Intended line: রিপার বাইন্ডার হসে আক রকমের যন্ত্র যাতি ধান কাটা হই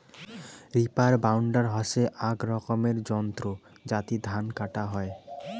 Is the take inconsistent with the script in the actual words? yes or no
no